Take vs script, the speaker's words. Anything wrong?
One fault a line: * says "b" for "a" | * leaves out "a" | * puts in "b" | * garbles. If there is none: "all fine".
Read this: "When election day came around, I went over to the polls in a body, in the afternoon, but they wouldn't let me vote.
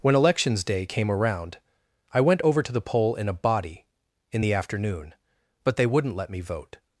* says "elections" for "election"
* says "poll" for "polls"